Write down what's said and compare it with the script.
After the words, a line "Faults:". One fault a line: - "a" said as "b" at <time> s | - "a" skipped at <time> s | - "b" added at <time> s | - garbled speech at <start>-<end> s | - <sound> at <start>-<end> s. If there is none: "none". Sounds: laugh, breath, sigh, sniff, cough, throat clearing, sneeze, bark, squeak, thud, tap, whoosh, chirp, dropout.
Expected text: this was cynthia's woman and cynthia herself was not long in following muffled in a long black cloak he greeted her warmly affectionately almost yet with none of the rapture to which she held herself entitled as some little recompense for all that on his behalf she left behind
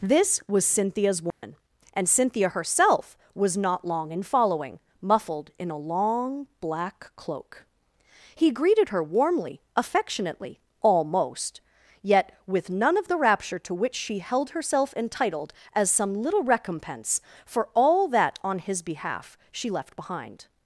this was cynthia's woman and cynthia herself was not long in following muffled in a long black cloak he greeted her warmly affectionately almost yet with none of the rapture to which she held herself entitled as some little recompense for all that on his behalf she left behind
Faults:
- dropout at 1.3-1.4 s